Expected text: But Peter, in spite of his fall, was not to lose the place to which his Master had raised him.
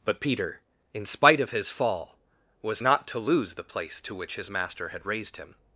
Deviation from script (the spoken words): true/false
false